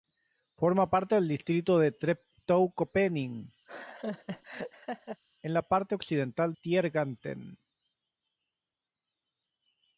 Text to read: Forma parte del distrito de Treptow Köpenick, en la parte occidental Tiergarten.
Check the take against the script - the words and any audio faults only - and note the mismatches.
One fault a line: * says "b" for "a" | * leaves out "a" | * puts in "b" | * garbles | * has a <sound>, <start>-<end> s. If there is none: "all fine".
* has a laugh, 3.7-5.2 s